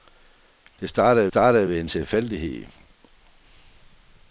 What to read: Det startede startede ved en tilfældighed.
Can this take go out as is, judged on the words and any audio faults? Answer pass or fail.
pass